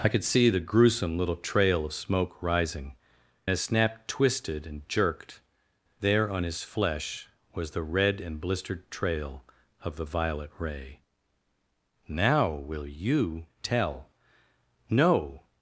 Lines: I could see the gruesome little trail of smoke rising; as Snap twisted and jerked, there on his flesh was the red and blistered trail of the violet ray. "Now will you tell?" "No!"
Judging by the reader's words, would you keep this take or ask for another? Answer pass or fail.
pass